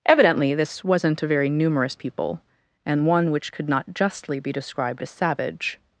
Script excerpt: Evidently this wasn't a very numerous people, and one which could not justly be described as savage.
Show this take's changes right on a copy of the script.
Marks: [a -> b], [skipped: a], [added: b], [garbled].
Evidently this wasn't a very numerous people, and one which could not justly be described as savage.